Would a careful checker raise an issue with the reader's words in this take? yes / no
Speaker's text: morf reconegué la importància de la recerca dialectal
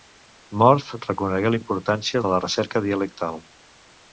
no